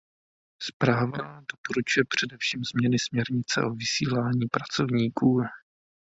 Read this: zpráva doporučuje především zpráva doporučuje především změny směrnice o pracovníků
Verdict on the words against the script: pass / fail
fail